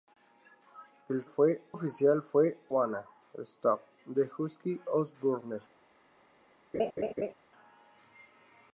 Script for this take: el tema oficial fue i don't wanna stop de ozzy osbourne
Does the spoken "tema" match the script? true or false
false